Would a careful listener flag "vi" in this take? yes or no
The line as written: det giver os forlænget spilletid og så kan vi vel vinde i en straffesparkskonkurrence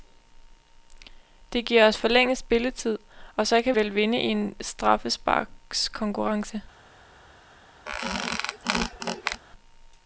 yes